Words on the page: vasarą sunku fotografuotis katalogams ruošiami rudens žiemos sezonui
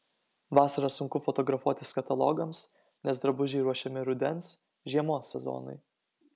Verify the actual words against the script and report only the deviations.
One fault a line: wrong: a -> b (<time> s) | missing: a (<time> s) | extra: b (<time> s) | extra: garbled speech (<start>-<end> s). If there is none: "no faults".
extra: nes drabužiai (3.1 s)